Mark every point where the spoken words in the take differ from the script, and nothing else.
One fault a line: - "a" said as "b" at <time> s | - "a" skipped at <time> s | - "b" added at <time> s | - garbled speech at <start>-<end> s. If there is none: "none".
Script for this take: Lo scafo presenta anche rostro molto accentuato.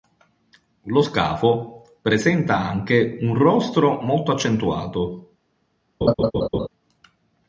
- "un" added at 3.2 s